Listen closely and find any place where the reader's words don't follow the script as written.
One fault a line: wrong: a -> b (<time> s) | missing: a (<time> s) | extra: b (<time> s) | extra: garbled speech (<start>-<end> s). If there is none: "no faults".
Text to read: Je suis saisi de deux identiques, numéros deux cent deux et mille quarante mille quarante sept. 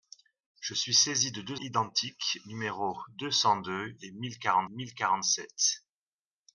no faults